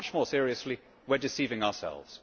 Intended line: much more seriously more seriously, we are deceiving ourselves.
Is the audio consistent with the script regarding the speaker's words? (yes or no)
no